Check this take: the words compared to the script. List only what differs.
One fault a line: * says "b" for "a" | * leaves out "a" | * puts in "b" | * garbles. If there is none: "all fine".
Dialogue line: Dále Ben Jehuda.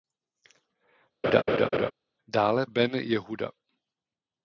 all fine